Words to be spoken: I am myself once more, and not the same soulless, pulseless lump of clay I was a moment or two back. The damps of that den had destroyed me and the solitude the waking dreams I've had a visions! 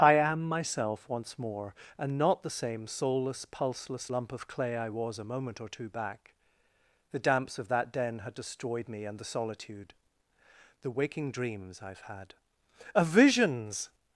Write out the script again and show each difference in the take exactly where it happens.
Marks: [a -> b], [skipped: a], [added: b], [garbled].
I am myself once more, and not the same soulless, pulseless lump of clay I was a moment or two back. The damps of that den had destroyed me and the solitude the waking dreams I've had a visions!